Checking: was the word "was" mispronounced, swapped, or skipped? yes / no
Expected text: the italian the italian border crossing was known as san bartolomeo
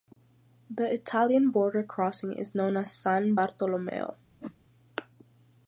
yes